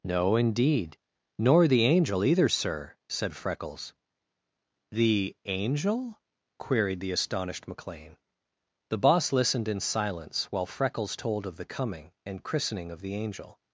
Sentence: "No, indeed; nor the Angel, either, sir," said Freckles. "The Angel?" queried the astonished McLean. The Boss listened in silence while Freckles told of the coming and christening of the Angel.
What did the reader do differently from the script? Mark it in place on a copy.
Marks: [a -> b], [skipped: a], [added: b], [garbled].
"No, indeed; nor the Angel, either, sir," said Freckles. "The Angel?" queried the astonished McLean. The Boss listened in silence while Freckles told of the coming and christening of the Angel.